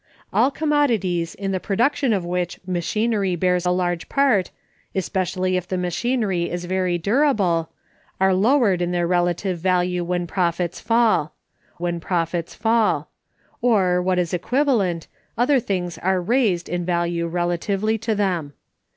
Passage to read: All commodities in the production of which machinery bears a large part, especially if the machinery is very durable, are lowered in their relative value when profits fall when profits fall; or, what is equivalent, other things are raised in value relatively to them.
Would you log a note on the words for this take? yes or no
no